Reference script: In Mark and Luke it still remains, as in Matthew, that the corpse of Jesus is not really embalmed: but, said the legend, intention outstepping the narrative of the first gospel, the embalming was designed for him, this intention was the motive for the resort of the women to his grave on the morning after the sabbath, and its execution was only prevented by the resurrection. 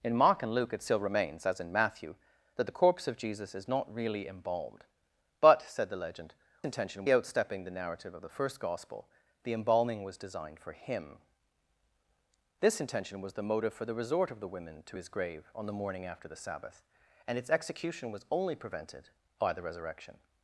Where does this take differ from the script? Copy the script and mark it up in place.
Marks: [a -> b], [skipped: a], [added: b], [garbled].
In Mark and Luke it still remains, as in Matthew, that the corpse of Jesus is not really embalmed: but, said the legend, intention outstepping the narrative of the first gospel, the embalming was designed for him, this intention was the motive for the resort of the women to his grave on the morning after the sabbath, and its execution was only prevented by the resurrection.